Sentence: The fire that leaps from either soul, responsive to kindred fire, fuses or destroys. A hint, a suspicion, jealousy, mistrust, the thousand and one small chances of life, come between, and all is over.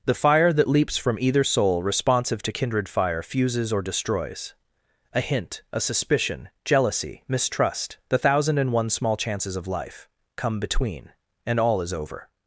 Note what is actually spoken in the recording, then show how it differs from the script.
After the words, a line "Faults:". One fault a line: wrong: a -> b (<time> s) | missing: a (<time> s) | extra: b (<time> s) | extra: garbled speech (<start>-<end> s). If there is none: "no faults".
The fire that leaps from either soul, responsive to kindred fire, fuses or destroys. A hint, a suspicion, jealousy, mistrust, the thousand and one small chances of life, come between, and all is over.
Faults:
no faults